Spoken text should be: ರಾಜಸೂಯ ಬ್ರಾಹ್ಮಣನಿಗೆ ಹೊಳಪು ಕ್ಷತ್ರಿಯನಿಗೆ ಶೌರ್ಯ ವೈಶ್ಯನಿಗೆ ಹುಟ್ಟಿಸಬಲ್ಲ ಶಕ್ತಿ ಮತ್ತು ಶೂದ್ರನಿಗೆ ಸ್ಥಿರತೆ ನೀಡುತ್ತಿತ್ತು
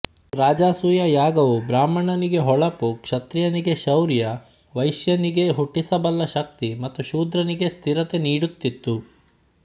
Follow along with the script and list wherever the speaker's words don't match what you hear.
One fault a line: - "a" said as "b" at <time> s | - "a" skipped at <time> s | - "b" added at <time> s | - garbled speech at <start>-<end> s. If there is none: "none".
- "ಯಾಗವು" added at 1.1 s